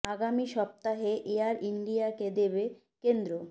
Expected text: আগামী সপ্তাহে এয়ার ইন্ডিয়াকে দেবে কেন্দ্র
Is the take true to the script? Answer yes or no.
yes